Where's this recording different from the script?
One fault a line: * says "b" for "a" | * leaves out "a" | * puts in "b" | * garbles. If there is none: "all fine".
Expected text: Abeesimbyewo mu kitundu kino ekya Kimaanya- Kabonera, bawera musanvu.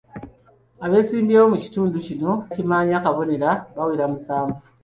* leaves out "ekya"